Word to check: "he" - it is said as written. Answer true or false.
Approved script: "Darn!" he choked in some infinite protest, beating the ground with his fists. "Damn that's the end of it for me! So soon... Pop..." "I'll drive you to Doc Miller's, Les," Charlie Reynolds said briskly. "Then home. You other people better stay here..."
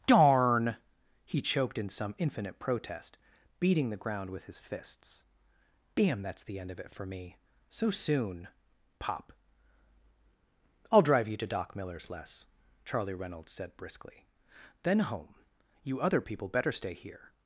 true